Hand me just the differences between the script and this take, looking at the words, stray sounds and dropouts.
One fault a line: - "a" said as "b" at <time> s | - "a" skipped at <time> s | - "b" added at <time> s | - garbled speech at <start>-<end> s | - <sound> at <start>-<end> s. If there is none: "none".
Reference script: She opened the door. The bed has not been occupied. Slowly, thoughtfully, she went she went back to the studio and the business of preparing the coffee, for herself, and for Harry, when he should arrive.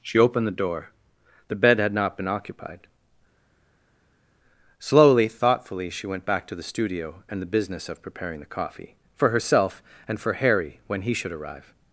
- "has" said as "had" at 1.8 s
- "she went" skipped at 6.3 s